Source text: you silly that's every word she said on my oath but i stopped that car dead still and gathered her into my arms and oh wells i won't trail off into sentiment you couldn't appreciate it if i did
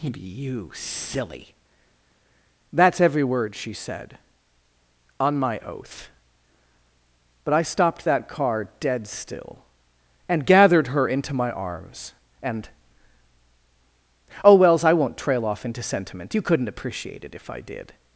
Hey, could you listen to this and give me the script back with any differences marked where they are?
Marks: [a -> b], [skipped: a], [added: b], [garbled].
you silly that's every word she said on my oath but i stopped that car dead still and gathered her into my arms and oh wells i won't trail off into sentiment you couldn't appreciate it if i did